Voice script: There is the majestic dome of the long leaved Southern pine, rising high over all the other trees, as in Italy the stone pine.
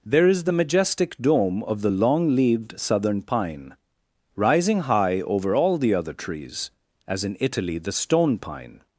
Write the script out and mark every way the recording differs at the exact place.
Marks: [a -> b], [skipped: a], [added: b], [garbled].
There is the majestic dome of the long leaved Southern pine, rising high over all the other trees, as in Italy the stone pine.